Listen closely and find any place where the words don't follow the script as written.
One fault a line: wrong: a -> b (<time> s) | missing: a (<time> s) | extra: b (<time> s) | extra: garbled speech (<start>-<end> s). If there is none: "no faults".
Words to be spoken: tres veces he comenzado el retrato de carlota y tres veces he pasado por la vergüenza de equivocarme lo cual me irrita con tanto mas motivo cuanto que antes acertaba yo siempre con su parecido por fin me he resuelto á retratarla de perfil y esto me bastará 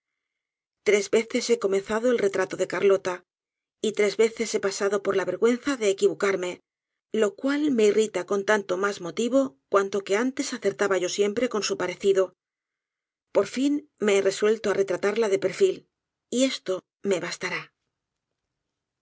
no faults